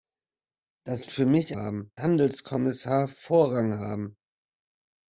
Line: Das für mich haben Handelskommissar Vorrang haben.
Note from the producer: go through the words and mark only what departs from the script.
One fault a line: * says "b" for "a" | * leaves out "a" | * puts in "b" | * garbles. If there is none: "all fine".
all fine